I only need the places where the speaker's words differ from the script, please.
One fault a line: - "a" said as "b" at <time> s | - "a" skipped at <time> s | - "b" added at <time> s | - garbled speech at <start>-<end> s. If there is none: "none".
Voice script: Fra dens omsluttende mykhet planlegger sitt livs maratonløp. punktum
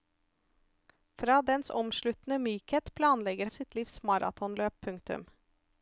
none